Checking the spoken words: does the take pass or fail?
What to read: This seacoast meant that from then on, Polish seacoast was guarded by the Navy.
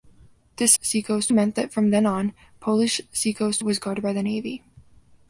pass